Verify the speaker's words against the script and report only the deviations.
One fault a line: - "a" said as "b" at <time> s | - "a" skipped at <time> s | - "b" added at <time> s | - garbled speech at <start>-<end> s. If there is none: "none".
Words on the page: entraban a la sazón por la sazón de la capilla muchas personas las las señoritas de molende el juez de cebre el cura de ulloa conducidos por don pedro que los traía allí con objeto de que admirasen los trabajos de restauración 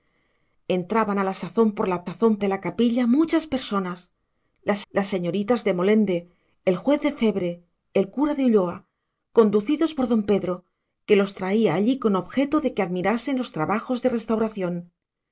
none